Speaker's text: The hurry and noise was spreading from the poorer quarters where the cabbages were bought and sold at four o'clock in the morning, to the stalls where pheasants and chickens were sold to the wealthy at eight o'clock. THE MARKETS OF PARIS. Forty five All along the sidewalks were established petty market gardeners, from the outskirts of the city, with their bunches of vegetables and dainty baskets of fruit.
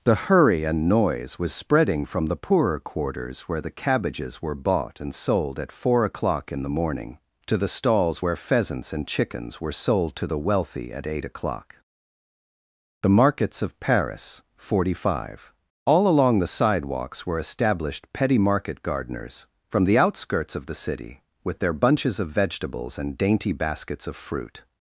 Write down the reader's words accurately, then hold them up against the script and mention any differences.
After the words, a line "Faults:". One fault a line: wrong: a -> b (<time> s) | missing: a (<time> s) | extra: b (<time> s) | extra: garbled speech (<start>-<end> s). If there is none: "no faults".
The hurry and noise was spreading from the poorer quarters where the cabbages were bought and sold at four o'clock in the morning, to the stalls where pheasants and chickens were sold to the wealthy at eight o'clock. THE MARKETS OF PARIS. Forty five All along the sidewalks were established petty market gardeners, from the outskirts of the city, with their bunches of vegetables and dainty baskets of fruit.
Faults:
no faults